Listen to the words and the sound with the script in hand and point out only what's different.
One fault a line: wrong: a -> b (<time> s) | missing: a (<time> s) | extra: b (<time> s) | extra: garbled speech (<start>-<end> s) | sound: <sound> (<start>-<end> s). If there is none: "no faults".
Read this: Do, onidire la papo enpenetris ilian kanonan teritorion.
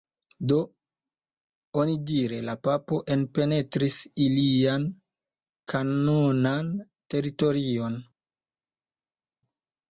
no faults